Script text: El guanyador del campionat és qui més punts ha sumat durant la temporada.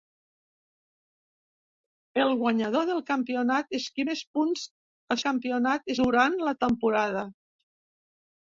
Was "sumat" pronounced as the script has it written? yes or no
no